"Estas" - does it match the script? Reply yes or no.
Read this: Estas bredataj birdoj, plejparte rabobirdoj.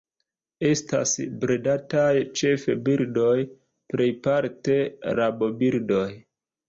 yes